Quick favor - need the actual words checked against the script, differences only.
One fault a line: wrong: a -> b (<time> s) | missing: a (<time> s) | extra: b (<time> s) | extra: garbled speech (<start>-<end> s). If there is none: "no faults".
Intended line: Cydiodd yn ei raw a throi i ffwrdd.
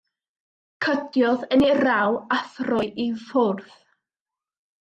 no faults